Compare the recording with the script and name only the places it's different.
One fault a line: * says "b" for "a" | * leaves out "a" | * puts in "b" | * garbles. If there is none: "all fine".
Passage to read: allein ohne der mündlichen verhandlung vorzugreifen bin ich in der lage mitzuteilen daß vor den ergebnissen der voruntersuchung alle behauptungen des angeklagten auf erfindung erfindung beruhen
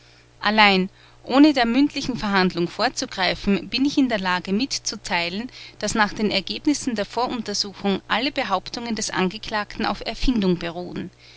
* says "nach" for "vor"
* leaves out "erfindung"